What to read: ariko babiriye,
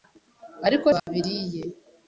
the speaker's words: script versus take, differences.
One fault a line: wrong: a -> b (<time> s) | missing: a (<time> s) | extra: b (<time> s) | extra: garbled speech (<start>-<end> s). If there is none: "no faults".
no faults